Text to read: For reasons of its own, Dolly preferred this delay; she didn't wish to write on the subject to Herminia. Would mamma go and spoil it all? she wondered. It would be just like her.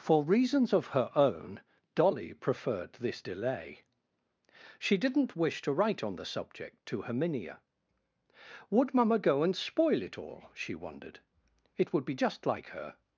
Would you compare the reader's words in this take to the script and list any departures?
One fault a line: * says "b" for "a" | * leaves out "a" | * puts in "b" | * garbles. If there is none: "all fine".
* says "her" for "its"